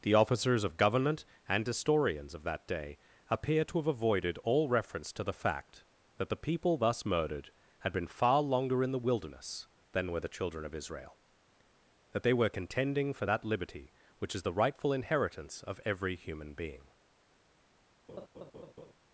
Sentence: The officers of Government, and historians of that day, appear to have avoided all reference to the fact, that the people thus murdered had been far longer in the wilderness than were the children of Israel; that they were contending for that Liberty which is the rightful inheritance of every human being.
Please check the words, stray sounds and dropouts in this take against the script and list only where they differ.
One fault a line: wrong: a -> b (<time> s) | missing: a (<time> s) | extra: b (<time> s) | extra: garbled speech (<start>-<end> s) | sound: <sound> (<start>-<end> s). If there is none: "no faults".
sound: laugh (18.1-18.9 s)